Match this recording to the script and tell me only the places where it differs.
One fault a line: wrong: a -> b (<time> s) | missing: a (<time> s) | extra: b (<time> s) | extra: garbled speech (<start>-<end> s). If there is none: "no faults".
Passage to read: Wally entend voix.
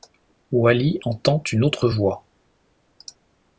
extra: une autre (1.5 s)